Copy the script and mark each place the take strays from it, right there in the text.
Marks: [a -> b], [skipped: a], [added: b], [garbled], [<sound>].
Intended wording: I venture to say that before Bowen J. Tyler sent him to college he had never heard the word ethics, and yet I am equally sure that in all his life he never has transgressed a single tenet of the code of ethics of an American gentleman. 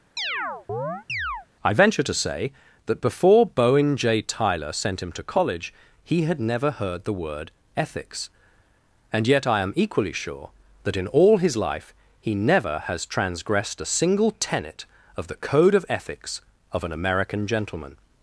[chirp] I venture to say that before Bowen J. Tyler sent him to college he had never heard the word ethics, and yet I am equally sure that in all his life he never has transgressed a single tenet of the code of ethics of an American gentleman.